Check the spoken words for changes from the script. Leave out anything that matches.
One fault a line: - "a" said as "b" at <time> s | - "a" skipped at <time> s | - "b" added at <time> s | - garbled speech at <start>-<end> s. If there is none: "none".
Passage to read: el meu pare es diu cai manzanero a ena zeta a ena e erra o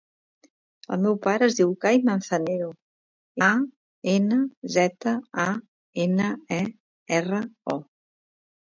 none